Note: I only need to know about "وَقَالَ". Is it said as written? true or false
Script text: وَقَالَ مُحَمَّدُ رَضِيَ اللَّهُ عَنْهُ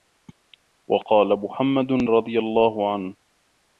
true